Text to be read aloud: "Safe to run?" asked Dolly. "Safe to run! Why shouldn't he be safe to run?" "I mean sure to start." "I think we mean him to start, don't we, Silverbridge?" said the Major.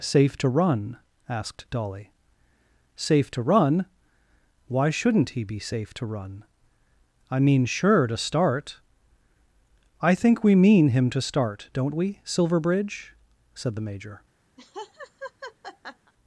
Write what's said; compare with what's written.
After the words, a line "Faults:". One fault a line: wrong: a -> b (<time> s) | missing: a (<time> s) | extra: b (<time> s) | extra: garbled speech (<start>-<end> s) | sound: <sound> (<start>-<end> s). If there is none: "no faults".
"Safe to run?" asked Dolly. "Safe to run! Why shouldn't he be safe to run?" "I mean sure to start." "I think we mean him to start, don't we, Silverbridge?" said the Major.
Faults:
sound: laugh (14.6-16.1 s)